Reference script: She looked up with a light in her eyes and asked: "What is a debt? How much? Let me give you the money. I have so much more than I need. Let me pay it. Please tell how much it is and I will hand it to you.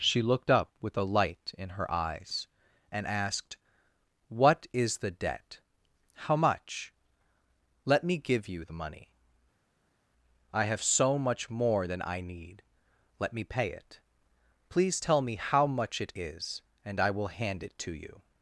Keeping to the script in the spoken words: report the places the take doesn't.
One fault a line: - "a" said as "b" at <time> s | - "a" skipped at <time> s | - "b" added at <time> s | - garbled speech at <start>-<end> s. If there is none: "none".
- "a" said as "the" at 5.0 s
- "me" added at 15.2 s